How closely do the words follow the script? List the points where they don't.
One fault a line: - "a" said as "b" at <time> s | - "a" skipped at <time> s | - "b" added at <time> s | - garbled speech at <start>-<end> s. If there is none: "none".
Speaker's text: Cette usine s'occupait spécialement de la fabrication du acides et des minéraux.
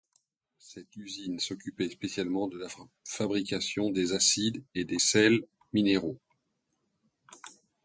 - "du" said as "des" at 3.9 s
- "sels" added at 5.0 s